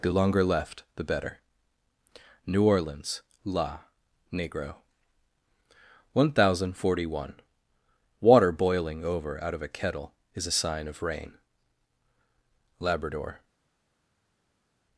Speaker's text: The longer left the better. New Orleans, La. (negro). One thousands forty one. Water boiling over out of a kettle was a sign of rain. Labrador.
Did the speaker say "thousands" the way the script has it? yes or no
no